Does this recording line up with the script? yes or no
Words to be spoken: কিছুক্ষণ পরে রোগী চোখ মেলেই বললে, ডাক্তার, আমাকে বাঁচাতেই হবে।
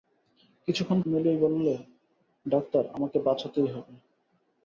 no